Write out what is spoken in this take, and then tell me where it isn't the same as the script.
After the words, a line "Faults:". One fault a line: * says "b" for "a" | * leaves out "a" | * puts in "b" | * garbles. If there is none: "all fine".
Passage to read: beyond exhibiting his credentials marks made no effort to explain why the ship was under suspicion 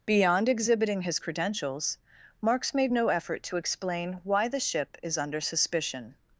beyond exhibiting his credentials marks made no effort to explain why the ship is under suspicion
Faults:
* says "is" for "was"